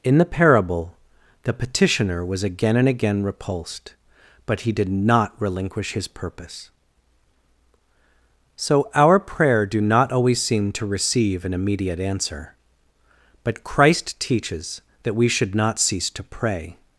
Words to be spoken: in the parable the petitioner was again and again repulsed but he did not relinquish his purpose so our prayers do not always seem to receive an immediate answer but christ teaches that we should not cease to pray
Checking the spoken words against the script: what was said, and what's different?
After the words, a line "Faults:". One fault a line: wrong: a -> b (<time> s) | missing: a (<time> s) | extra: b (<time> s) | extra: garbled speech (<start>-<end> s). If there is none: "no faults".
in the parable the petitioner was again and again repulsed but he did not relinquish his purpose so our prayer do not always seem to receive an immediate answer but christ teaches that we should not cease to pray
Faults:
wrong: prayers -> prayer (9.2 s)